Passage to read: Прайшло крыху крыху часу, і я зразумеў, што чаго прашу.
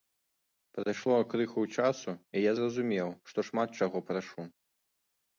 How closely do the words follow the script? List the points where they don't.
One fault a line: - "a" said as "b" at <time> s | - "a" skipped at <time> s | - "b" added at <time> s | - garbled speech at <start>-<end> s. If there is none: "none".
- "крыху" skipped at 1.6 s
- "шмат" added at 3.5 s